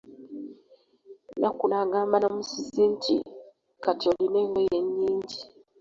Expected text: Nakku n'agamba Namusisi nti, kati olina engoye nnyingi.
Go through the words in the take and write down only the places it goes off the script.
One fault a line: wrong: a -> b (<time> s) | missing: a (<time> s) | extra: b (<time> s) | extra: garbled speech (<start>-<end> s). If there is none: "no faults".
no faults